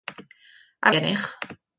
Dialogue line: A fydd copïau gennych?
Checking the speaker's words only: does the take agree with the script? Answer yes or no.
no